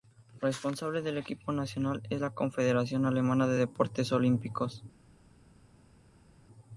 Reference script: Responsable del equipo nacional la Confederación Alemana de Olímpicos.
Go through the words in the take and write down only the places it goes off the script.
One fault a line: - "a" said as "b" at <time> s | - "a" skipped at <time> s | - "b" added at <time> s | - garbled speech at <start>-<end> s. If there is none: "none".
- "es" added at 2.1 s
- "Deportes" added at 3.6 s